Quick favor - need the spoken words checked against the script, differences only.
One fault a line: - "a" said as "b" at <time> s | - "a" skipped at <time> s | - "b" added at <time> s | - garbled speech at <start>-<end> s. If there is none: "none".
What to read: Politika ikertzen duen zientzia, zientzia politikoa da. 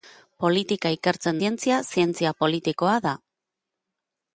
- "duen" skipped at 1.4 s